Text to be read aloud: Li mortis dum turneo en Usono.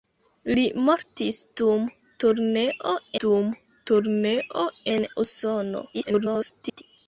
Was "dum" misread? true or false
false